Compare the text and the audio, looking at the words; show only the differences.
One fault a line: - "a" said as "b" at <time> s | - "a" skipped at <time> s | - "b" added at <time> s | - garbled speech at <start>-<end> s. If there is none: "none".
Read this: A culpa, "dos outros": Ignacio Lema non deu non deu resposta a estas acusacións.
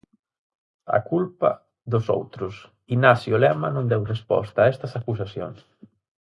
- "non deu" skipped at 4.0 s